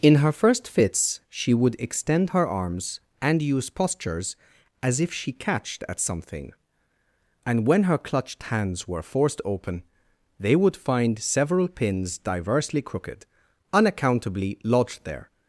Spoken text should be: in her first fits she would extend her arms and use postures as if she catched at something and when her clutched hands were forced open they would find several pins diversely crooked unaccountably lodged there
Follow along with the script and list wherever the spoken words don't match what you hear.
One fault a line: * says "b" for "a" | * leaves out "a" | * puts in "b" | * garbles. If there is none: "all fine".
all fine